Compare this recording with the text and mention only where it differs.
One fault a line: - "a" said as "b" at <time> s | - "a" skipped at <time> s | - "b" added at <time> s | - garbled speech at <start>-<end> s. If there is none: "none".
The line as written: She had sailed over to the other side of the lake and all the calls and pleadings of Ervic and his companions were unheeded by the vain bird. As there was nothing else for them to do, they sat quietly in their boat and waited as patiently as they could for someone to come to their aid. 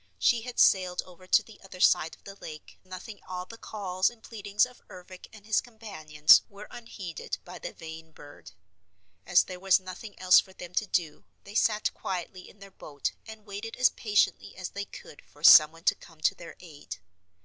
- "and" said as "nothing" at 2.8 s